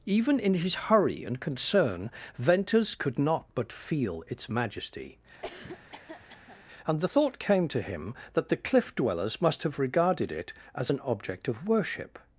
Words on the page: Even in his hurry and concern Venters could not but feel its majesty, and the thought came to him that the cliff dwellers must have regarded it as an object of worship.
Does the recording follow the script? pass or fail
pass